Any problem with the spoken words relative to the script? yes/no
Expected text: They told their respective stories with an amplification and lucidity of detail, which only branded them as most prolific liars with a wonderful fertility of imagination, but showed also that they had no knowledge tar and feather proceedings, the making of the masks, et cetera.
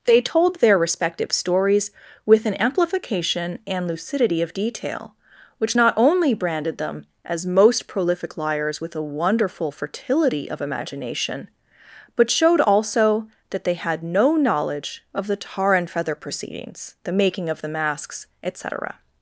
yes